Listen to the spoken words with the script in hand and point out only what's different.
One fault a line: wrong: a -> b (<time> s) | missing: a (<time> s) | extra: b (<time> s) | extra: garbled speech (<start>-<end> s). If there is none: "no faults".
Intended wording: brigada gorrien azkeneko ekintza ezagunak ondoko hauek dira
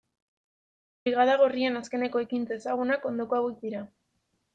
no faults